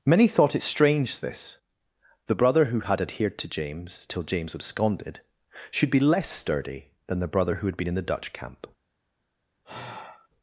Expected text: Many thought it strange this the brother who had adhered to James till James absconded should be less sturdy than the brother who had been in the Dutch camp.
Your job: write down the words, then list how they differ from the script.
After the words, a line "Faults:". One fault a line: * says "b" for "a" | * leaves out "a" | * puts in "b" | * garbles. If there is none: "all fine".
Many thought it strange this the brother who had adhered to James till James absconded should be less sturdy than the brother who had been in the Dutch camp.
Faults:
all fine